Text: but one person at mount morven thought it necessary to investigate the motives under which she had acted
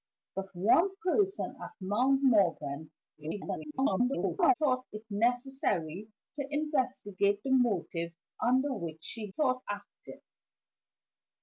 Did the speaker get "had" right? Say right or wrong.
wrong